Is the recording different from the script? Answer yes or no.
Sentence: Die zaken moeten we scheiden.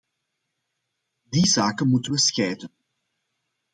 no